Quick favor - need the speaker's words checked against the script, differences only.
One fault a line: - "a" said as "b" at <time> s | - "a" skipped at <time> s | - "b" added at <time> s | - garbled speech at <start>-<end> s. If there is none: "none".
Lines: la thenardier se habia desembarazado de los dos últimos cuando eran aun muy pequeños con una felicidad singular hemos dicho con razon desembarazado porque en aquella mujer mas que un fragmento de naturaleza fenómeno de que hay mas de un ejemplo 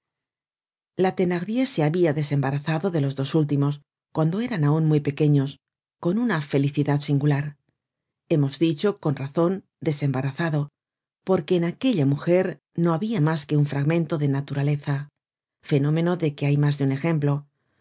- "no habia" added at 12.8 s